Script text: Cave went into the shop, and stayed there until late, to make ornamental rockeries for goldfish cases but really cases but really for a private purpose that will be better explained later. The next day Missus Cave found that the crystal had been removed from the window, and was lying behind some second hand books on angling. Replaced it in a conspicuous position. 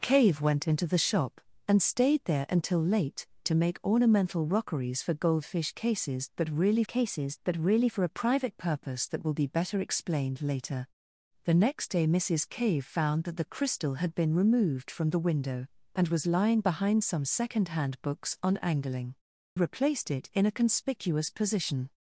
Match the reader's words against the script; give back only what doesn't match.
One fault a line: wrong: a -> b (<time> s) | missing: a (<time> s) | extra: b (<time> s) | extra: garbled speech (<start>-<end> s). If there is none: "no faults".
no faults